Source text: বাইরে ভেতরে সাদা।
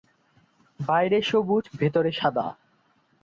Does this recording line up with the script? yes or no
no